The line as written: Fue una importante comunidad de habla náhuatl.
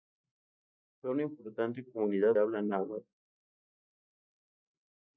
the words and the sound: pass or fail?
fail